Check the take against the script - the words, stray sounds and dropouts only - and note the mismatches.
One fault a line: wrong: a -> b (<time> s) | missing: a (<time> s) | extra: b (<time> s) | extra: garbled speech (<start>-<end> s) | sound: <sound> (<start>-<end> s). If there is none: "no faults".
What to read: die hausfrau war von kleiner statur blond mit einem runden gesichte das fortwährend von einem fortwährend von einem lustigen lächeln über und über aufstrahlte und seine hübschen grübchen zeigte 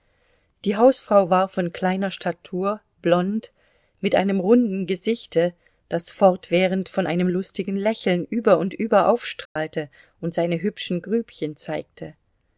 missing: fortwährend von einem (7.3 s)
sound: dropout (9.5-9.6 s)